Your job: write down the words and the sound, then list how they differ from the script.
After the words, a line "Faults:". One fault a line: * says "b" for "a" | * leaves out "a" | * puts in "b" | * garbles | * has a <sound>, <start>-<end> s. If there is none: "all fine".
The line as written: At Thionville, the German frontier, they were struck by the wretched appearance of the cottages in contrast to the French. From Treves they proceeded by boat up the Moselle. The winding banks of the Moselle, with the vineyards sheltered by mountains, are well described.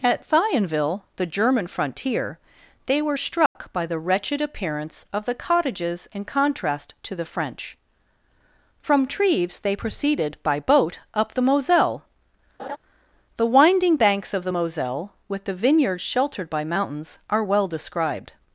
At Thionville, the German frontier, they were struck by the wretched appearance of the cottages in contrast to the French. From Treves they proceeded by boat up the Moselle. The winding banks of the Moselle, with the vineyards sheltered by mountains, are well described.
Faults:
* has a dropout, 3.5-3.6 s
* has a laugh, 12.6-12.8 s